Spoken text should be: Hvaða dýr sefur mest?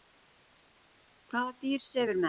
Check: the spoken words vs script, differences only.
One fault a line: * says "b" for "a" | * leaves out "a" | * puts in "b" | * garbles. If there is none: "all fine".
all fine